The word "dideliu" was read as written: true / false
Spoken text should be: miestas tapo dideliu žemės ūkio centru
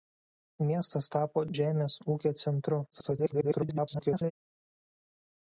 false